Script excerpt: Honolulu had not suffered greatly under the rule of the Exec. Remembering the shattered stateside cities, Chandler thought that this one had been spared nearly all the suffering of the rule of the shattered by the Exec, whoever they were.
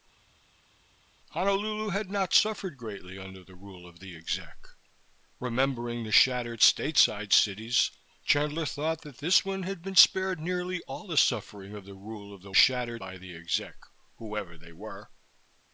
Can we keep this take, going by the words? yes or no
yes